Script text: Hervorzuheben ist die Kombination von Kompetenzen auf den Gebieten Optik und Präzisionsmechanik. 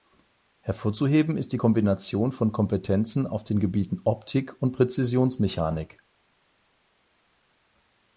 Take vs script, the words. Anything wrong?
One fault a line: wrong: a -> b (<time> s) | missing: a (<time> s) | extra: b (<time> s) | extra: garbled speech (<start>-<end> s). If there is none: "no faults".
no faults